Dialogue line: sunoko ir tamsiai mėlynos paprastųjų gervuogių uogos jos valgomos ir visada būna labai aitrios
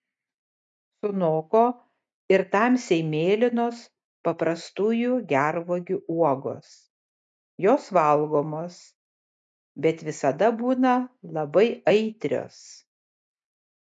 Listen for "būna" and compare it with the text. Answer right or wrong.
right